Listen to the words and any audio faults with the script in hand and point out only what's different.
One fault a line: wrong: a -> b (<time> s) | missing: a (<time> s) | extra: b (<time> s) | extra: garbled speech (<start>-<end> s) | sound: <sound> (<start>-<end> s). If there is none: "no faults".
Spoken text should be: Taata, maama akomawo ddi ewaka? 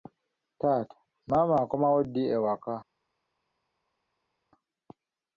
no faults